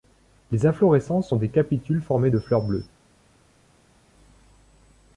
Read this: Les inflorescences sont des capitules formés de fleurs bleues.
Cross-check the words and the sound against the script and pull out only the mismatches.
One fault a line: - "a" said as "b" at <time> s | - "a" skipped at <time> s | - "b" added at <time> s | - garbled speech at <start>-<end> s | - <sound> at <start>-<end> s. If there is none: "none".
none